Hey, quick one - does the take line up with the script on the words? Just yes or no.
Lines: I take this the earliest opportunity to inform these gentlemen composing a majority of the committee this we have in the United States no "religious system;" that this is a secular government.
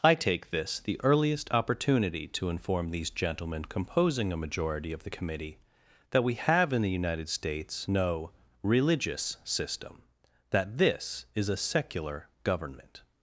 no